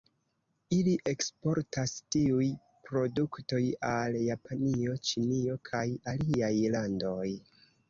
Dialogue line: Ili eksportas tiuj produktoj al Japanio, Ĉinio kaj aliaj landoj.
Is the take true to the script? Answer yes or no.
yes